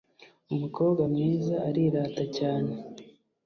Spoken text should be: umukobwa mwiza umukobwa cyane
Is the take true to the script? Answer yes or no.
no